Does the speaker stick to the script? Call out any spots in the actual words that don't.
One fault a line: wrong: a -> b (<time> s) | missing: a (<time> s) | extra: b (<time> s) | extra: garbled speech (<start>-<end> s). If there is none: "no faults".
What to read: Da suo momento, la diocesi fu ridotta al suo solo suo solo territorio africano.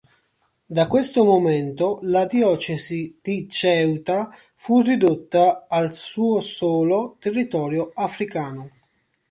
wrong: suo -> questo (0.9 s)
extra: di Ceuta (3.2 s)
missing: suo solo (7.2 s)